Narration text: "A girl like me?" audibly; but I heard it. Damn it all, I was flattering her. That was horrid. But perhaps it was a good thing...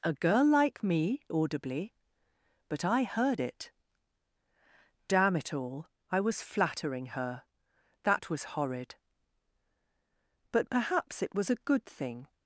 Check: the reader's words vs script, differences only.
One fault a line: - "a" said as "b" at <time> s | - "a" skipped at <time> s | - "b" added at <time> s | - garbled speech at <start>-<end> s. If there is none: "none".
none